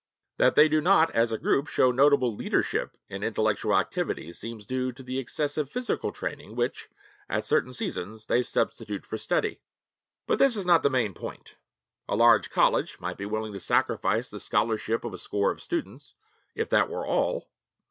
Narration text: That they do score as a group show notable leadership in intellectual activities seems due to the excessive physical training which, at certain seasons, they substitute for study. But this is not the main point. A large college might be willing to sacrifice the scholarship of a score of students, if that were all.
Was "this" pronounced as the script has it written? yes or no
yes